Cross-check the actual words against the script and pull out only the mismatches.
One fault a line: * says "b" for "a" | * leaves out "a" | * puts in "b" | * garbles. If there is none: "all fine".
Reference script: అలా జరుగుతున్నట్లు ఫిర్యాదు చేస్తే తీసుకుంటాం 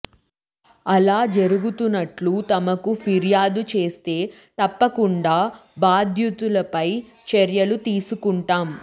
* puts in "తమకు"
* puts in "తప్పకుండా బాధ్యులపై చర్యలు"